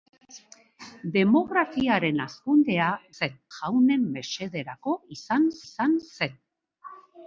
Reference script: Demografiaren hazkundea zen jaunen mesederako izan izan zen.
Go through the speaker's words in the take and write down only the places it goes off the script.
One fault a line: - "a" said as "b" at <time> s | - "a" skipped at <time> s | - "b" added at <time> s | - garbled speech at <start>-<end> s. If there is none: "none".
none